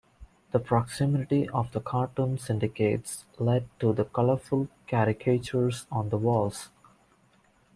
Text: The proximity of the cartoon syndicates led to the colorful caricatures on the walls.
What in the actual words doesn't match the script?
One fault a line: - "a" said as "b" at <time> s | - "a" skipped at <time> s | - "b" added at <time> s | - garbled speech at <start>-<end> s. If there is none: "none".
none